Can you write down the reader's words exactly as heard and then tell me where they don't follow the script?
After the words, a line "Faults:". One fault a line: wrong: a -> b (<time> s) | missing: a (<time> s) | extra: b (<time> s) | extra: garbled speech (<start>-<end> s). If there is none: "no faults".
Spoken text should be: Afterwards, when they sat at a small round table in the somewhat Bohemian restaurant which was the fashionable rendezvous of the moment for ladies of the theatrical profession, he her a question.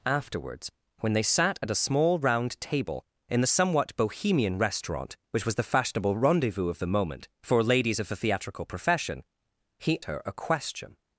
Afterwards, when they sat at a small round table in the somewhat Bohemian restaurant which was the fashionable rendezvous of the moment for ladies of the theatrical profession, he her a question.
Faults:
no faults